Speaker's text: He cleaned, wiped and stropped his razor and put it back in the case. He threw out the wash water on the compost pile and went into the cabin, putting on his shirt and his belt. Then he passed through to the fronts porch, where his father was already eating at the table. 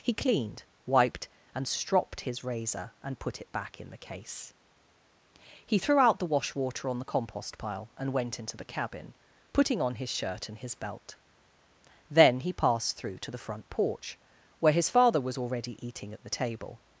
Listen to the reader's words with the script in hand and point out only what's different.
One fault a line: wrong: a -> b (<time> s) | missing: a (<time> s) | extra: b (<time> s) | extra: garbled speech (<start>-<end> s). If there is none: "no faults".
wrong: fronts -> front (13.4 s)